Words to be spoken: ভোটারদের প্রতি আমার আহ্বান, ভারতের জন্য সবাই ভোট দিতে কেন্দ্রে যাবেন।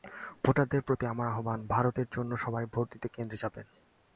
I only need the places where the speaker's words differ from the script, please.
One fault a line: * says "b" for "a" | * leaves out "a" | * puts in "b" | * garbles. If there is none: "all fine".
all fine